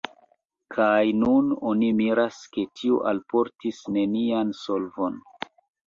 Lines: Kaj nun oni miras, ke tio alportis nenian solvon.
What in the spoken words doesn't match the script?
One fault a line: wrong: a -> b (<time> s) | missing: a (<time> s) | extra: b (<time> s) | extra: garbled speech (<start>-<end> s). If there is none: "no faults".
no faults